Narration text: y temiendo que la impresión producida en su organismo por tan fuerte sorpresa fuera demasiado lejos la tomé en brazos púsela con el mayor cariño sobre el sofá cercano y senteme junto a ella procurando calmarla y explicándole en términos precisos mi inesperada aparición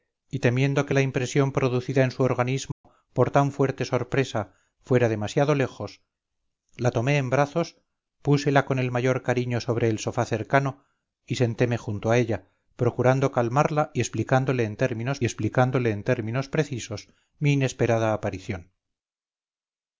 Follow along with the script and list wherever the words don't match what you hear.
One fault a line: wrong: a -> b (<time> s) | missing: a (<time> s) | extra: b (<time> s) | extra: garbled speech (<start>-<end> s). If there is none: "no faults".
extra: explicándole en términos (15.2 s)